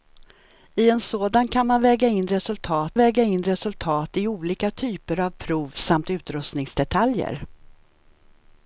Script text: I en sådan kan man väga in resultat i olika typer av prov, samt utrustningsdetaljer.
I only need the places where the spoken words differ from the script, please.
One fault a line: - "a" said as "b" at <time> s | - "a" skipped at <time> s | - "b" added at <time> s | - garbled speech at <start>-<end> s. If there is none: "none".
- "väga in resultat" added at 3.0 s